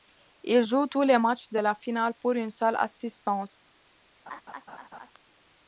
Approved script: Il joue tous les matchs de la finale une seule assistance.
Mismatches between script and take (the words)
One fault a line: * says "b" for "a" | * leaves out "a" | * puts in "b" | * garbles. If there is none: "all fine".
* puts in "pour"